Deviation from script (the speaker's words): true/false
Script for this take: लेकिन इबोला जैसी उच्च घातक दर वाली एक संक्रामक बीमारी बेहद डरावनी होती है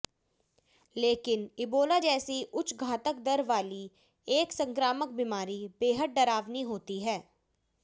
false